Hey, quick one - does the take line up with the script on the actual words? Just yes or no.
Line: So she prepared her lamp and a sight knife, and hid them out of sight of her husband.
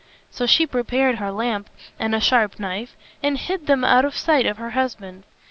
no